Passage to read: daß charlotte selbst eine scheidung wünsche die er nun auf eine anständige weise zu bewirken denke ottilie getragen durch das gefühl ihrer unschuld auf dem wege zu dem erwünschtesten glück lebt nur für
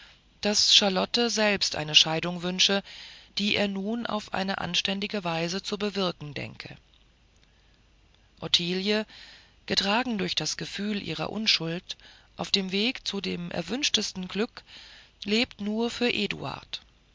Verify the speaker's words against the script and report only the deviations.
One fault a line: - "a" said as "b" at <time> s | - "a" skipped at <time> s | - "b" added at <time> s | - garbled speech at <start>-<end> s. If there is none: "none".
none